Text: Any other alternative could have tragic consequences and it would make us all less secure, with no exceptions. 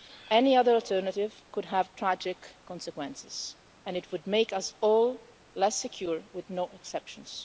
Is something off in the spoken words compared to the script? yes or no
no